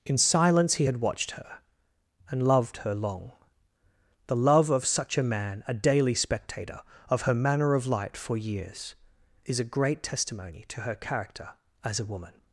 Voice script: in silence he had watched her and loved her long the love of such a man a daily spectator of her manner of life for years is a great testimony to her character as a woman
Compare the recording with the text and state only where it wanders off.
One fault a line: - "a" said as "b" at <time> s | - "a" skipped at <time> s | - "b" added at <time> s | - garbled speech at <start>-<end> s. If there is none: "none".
- "life" said as "light" at 7.9 s